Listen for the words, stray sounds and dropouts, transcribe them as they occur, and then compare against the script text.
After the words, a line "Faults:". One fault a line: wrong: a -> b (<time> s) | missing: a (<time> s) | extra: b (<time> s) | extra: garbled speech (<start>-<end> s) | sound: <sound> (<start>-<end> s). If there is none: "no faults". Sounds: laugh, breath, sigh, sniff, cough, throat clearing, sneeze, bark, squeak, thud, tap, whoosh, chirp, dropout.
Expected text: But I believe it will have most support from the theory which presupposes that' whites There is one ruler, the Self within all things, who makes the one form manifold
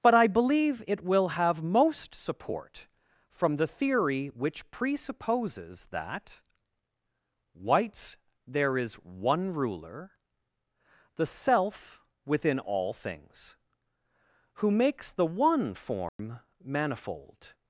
But I believe it will have most support from the theory which presupposes that' whites There is one ruler, the Self within all things, who makes the one form manifold
Faults:
sound: dropout (16.1-16.2 s)